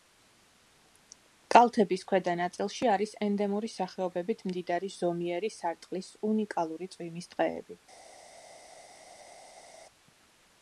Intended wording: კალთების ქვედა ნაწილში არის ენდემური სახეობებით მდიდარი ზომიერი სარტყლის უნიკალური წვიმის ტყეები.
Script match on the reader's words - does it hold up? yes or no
yes